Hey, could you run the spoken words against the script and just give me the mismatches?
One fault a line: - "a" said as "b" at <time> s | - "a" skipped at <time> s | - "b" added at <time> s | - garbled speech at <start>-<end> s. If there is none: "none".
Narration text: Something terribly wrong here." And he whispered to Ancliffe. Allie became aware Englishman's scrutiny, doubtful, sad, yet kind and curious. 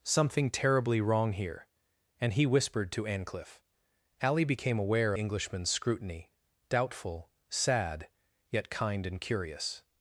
none